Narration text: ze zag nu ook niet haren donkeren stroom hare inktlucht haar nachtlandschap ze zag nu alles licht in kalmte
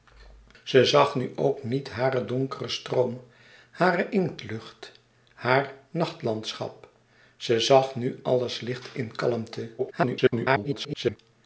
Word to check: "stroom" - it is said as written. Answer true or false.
true